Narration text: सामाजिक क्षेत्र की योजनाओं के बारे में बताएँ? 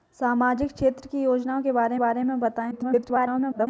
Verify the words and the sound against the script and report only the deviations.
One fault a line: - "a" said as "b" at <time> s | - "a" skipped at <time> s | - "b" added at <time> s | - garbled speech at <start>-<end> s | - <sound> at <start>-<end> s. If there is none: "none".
- "बारे" added at 2.0 s
- garbled speech at 2.7-3.7 s